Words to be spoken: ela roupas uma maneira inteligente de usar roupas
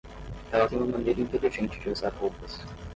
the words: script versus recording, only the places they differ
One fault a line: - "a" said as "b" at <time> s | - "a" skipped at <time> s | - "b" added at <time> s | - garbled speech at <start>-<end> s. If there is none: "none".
- "roupas" said as "tem" at 0.6 s